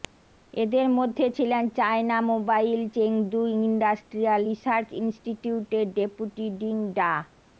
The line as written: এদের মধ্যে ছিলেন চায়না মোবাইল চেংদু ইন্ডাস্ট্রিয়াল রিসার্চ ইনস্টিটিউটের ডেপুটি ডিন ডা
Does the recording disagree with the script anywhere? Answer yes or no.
no